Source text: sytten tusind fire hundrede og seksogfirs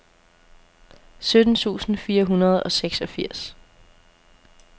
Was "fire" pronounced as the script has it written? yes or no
yes